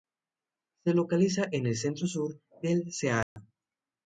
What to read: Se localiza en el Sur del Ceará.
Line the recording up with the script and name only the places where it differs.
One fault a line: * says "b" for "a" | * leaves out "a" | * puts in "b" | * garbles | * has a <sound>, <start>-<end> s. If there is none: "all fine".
* puts in "Centro"
* has a dropout, 3.2-3.4 s